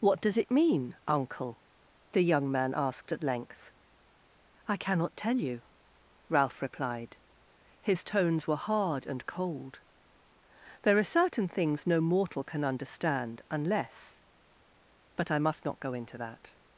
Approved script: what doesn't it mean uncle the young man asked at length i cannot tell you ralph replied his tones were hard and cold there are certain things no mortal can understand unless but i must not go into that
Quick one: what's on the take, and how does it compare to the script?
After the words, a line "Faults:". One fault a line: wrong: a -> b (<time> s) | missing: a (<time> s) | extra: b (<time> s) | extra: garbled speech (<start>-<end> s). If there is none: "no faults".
what does it mean uncle the young man asked at length i cannot tell you ralph replied his tones were hard and cold there are certain things no mortal can understand unless but i must not go into that
Faults:
wrong: doesn't -> does (0.2 s)